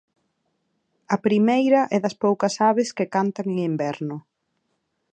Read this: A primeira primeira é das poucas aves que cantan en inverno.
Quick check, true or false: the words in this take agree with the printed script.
false